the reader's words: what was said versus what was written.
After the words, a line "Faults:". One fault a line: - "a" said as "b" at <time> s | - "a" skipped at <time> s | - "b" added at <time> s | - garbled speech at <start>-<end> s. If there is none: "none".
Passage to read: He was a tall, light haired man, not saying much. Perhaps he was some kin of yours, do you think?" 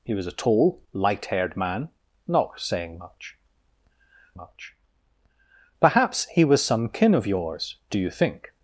He was a tall, light haired man, not saying much much. Perhaps he was some kin of yours, do you think?"
Faults:
- "much" added at 4.3 s